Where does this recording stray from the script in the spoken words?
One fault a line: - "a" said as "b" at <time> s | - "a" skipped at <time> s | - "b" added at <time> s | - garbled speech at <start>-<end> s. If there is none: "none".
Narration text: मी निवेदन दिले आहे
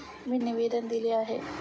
none